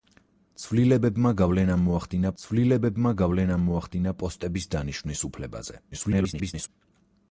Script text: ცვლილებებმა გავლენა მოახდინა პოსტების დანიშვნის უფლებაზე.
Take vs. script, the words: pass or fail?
fail